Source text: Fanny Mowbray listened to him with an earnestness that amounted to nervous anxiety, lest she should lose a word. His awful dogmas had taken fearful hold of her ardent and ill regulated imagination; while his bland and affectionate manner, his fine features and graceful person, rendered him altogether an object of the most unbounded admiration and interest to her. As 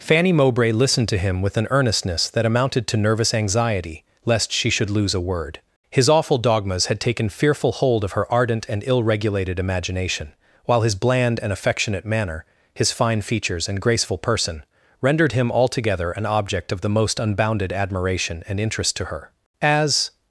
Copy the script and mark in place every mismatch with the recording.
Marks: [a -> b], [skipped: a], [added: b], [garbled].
Fanny Mowbray listened to him with an earnestness that amounted to nervous anxiety, lest she should lose a word. His awful dogmas had taken fearful hold of her ardent and ill regulated imagination; while his bland and affectionate manner, his fine features and graceful person, rendered him altogether an object of the most unbounded admiration and interest to her. As